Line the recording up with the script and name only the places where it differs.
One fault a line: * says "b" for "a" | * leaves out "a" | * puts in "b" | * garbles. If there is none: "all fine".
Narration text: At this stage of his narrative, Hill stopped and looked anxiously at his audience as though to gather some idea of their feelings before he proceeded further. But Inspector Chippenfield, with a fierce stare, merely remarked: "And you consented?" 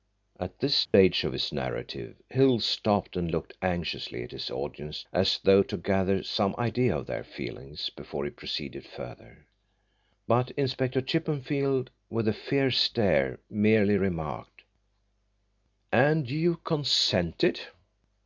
all fine